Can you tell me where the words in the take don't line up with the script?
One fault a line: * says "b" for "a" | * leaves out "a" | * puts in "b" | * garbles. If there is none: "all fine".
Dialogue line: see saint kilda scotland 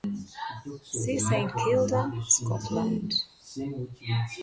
all fine